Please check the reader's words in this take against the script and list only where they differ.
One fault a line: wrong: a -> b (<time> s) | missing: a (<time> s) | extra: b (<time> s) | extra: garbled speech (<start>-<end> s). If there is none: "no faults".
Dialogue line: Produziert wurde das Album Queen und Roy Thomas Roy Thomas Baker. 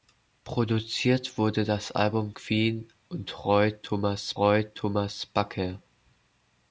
no faults